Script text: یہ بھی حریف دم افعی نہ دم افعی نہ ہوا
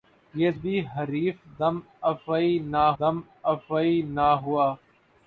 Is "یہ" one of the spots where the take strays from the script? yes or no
no